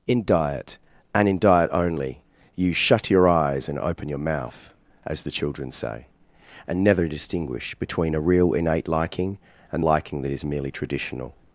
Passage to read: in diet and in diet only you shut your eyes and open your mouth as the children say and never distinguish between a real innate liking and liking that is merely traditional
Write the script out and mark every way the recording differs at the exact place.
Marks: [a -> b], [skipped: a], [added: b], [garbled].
in diet and in diet only you shut your eyes and open your mouth as the children say and never distinguish between a real innate liking and liking that is merely traditional